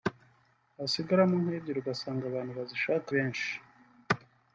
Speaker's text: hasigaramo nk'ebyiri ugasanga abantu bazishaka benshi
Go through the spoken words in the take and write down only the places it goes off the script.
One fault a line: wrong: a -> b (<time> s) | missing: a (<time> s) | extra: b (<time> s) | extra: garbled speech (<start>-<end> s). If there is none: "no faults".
no faults